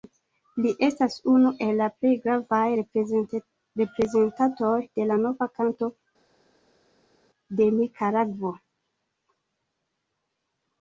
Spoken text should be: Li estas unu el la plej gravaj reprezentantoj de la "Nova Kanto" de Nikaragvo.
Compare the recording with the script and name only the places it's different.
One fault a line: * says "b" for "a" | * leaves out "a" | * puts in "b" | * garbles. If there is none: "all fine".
all fine